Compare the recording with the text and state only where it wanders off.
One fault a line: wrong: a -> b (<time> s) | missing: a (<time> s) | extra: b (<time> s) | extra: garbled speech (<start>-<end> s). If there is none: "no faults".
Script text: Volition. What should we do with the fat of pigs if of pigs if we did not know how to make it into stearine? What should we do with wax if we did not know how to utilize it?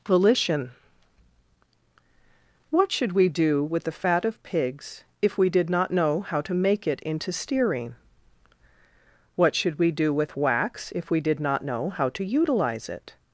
missing: of pigs if (5.4 s)